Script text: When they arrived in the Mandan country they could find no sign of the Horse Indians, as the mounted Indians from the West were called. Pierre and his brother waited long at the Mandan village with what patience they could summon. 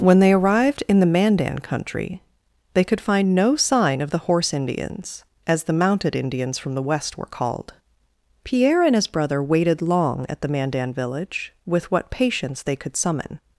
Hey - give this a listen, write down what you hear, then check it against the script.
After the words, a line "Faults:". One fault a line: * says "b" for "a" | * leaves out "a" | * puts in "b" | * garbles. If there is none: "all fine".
When they arrived in the Mandan country they could find no sign of the Horse Indians, as the mounted Indians from the West were called. Pierre and his brother waited long at the Mandan village with what patience they could summon.
Faults:
all fine